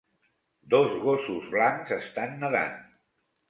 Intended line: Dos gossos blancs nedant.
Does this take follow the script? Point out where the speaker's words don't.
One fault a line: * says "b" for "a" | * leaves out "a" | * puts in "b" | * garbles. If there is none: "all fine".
* puts in "estan"